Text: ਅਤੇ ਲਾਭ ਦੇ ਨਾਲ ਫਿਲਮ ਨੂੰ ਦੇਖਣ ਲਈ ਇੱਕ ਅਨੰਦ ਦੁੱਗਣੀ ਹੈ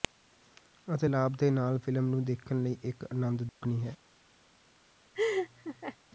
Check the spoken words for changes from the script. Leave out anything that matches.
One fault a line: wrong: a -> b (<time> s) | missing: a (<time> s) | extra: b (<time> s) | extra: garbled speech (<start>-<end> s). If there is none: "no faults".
no faults